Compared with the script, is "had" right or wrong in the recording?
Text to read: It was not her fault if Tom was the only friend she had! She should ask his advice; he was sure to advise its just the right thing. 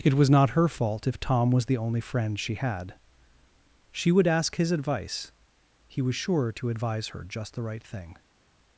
right